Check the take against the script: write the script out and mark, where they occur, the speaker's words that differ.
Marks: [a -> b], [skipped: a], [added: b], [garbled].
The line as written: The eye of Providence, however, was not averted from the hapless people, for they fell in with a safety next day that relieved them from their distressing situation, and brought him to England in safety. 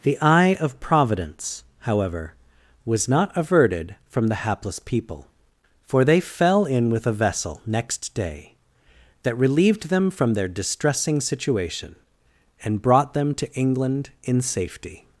The eye of Providence, however, was not averted from the hapless people, for they fell in with a [safety -> vessel] next day that relieved them from their distressing situation, and brought [him -> them] to England in safety.